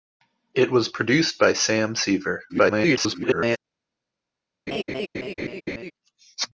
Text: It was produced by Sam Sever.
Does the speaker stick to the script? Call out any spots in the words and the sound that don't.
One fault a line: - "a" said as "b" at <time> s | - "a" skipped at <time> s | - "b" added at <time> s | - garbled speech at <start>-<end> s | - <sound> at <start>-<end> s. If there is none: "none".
- garbled speech at 2.5-3.6 s
- laugh at 4.7-5.9 s